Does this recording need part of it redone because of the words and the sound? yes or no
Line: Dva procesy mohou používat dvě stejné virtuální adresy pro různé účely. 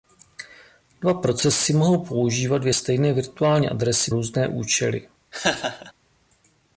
yes